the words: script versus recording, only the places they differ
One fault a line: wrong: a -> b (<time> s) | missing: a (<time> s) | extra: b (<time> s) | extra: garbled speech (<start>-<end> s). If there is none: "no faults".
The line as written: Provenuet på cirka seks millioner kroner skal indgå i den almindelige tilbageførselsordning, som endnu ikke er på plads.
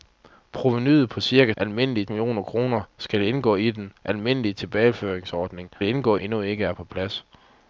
wrong: seks -> almindelige (1.6 s)
wrong: som -> indgå (5.8 s)